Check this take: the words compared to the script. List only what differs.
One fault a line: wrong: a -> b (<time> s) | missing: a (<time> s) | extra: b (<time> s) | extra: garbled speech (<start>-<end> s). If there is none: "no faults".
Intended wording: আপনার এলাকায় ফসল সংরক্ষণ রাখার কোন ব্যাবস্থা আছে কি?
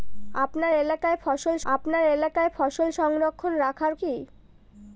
wrong: সংরক্ষণ রাখার কোন ব্যাবস্থা আছে -> আপনার এলাকায় ফসল সংরক্ষণ রাখার (1.7 s)